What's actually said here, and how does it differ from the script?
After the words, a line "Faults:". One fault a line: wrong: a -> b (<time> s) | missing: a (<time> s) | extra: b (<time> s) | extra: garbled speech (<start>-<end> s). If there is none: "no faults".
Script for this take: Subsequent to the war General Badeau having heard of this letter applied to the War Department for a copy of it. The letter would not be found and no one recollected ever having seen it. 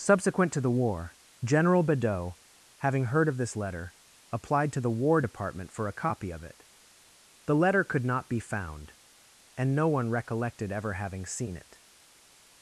Subsequent to the war General Badeau having heard of this letter applied to the War Department for a copy of it. The letter could not be found and no one recollected ever having seen it.
Faults:
wrong: would -> could (7.8 s)